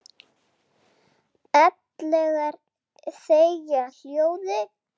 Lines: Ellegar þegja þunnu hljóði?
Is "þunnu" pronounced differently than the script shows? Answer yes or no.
yes